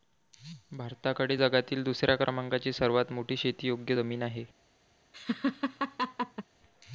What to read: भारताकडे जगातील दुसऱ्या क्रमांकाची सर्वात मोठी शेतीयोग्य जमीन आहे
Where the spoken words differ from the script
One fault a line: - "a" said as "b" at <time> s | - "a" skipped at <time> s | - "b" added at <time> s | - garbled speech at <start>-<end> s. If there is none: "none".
none